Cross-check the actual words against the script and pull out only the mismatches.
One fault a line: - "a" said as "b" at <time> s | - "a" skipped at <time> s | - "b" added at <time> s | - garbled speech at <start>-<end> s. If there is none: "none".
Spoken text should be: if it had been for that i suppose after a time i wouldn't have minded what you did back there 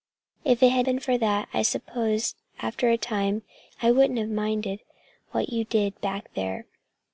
none